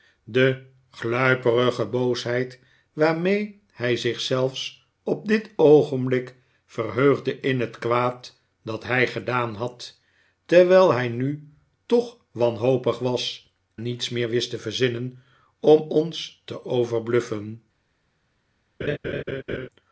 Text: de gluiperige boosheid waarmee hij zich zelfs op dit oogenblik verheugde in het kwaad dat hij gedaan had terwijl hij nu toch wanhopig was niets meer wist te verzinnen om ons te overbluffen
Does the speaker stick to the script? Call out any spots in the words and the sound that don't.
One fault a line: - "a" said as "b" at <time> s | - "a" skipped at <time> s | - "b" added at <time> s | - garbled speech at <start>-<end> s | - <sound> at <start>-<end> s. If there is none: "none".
- laugh at 18.8-19.7 s